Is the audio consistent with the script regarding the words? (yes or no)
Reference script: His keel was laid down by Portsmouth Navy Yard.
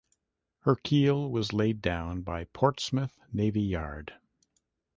no